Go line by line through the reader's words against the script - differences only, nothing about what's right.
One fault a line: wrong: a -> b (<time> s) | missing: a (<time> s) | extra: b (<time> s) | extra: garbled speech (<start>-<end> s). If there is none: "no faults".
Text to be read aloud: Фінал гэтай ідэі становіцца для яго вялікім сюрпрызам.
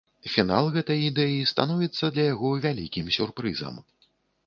no faults